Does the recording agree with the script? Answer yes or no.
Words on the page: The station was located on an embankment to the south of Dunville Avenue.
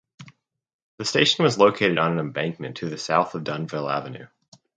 yes